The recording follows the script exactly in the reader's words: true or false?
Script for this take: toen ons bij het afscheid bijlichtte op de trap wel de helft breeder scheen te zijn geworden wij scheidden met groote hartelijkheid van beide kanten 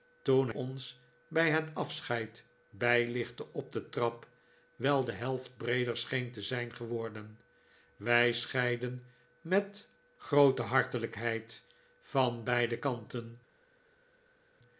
true